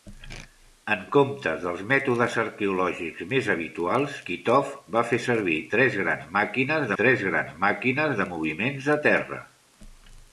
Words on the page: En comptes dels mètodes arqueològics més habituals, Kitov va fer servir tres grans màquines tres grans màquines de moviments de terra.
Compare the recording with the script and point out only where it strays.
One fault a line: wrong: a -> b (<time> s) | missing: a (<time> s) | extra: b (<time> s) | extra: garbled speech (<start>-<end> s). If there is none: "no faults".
no faults